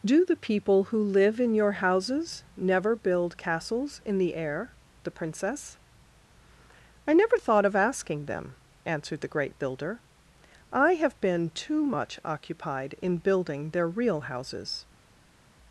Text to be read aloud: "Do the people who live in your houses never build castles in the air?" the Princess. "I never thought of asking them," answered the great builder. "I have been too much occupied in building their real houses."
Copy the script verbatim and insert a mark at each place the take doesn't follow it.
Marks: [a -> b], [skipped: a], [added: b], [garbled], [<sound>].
"Do the people who live in your houses never build castles in the air?" the Princess. "I never thought of asking them," answered the great builder. "I have been too much occupied in building their real houses."